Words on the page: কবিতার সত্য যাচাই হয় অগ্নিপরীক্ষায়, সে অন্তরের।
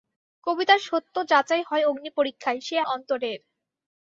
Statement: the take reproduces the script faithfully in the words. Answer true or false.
true